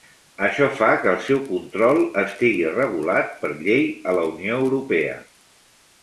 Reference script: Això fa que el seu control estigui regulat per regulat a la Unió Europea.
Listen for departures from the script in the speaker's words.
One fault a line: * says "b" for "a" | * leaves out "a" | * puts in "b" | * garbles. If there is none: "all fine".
* says "llei" for "regulat"